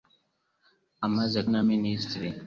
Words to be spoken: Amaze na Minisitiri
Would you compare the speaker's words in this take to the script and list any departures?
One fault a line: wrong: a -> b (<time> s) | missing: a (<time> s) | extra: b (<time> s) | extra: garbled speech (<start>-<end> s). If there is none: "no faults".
no faults